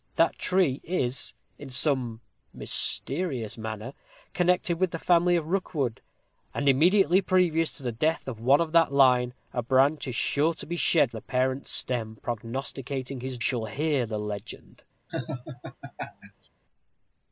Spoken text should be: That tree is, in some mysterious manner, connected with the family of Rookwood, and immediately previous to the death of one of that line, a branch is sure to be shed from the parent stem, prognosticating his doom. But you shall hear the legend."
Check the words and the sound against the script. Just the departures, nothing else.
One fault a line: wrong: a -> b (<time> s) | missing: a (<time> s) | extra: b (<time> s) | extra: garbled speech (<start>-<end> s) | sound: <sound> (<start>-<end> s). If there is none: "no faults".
missing: from (11.1 s)
missing: doom But you (13.4 s)
sound: laugh (15.1-16.5 s)